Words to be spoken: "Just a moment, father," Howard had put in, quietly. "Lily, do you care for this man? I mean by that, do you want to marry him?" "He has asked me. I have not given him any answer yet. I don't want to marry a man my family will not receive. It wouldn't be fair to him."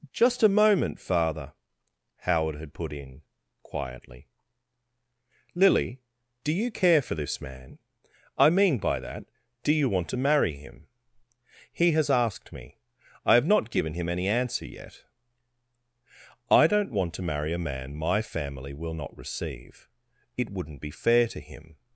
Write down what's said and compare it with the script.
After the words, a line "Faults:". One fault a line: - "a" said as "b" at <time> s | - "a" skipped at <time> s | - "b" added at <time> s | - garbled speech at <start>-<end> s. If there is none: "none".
"Just a moment, father," Howard had put in, quietly. "Lily, do you care for this man? I mean by that, do you want to marry him?" "He has asked me. I have not given him any answer yet. I don't want to marry a man my family will not receive. It wouldn't be fair to him."
Faults:
none